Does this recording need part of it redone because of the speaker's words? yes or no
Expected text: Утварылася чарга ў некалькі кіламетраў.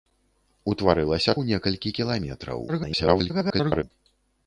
yes